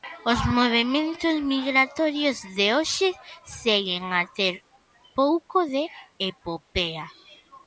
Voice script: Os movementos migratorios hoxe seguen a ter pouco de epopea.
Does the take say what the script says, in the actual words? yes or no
no